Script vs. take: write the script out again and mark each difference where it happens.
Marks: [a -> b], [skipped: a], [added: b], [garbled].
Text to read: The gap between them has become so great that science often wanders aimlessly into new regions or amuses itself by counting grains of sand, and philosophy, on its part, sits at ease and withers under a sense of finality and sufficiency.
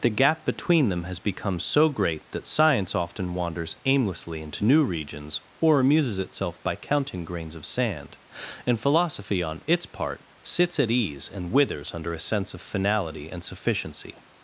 The gap between them has become so great that science often wanders aimlessly into new regions or amuses itself by counting grains of sand, and philosophy, on its part, sits at ease and withers under a sense of finality and sufficiency.